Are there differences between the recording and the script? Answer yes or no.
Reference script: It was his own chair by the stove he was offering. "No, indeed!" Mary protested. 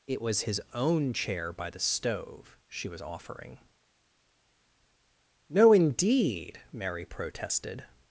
yes